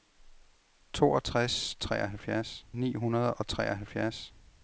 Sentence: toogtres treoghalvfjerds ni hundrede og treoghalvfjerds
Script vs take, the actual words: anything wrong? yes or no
no